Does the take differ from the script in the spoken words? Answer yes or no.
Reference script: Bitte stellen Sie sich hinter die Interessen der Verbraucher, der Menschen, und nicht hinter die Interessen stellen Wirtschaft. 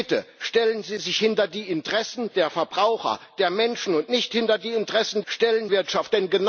no